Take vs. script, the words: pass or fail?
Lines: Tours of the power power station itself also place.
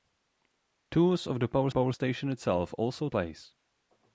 pass